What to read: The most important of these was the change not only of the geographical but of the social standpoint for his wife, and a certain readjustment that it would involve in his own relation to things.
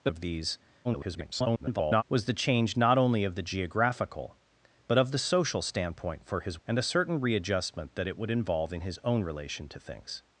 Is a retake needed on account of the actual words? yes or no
yes